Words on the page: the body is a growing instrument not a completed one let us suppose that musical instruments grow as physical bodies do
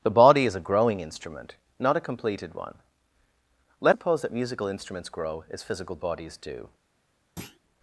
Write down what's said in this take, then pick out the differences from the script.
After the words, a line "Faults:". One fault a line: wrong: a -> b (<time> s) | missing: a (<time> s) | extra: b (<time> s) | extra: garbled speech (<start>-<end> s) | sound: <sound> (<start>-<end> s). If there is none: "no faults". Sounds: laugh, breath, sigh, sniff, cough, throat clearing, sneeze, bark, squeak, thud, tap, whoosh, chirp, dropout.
the body is a growing instrument not a completed one let suppose that musical instruments grow as physical bodies do
Faults:
missing: us (4.0 s)
sound: thud (7.4-7.6 s)